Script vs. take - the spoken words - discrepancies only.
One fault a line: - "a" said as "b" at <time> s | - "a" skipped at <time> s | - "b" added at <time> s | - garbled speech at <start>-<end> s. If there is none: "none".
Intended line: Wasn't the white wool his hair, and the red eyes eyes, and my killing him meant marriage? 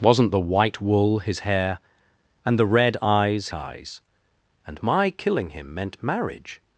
none